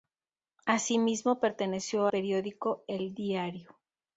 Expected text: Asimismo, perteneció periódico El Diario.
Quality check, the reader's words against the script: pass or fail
pass